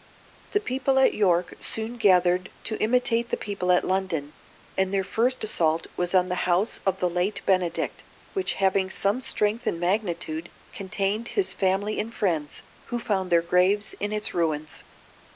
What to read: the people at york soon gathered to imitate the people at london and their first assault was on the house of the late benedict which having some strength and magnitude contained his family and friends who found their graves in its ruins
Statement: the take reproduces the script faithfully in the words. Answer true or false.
true